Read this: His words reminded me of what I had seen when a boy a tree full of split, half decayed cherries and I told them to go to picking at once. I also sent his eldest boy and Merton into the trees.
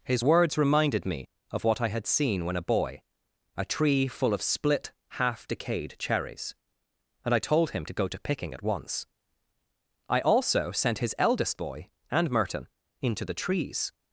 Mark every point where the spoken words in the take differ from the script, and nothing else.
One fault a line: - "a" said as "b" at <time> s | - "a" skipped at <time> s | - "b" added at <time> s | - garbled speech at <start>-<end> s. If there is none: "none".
- "them" said as "him" at 7.7 s